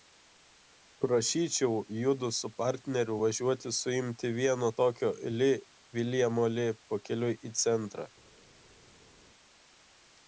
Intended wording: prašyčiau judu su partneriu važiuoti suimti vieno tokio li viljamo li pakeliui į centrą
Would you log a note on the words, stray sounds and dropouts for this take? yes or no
no